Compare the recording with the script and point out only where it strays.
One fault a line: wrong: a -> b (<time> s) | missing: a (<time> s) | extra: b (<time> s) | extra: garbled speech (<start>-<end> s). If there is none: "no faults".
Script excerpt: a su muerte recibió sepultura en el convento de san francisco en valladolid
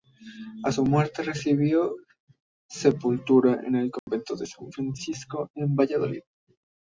no faults